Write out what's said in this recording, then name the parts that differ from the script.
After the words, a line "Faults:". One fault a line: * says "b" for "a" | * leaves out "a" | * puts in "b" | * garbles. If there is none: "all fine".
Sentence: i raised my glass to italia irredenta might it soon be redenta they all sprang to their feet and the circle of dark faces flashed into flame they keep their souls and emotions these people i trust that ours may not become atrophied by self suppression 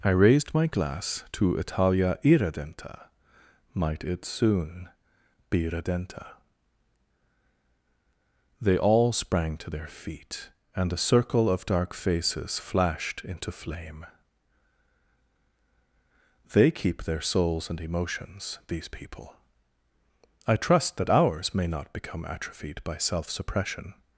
i raised my glass to italia irredenta might it soon be redenta they all sprang to their feet and a circle of dark faces flashed into flame they keep their souls and emotions these people i trust that ours may not become atrophied by self suppression
Faults:
* says "a" for "the"